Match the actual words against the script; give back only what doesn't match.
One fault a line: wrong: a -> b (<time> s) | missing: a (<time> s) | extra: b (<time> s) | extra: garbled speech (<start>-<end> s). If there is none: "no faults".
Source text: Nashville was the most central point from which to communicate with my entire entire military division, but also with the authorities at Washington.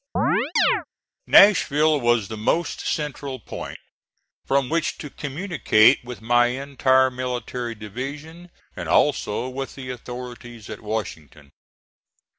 missing: entire (7.1 s)
wrong: but -> and (8.8 s)